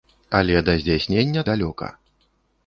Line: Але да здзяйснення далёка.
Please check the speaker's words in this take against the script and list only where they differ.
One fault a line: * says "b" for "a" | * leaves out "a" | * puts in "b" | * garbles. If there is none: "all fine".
all fine